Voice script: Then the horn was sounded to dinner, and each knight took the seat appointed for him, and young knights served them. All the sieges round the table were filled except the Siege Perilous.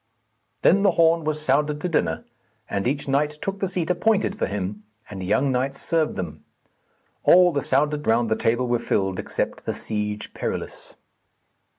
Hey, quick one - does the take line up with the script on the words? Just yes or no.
no